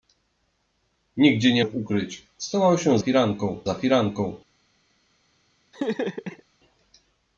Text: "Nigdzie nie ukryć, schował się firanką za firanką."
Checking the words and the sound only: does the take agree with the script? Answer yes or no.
no